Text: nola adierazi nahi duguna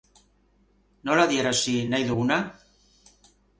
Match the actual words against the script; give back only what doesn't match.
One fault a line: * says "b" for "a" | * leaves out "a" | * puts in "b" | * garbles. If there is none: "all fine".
all fine